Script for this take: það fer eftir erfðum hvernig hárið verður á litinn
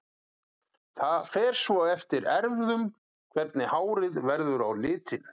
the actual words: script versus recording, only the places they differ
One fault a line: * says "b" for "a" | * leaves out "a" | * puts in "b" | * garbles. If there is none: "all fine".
* puts in "svo"